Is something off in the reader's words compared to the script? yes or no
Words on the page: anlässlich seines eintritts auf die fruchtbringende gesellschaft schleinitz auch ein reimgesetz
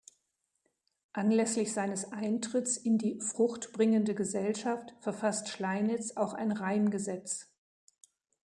yes